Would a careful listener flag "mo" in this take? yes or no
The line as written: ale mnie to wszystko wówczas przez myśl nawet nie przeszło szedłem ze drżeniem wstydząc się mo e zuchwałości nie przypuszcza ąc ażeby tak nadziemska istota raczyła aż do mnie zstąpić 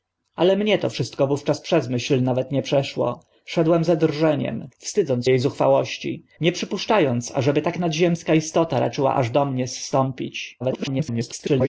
yes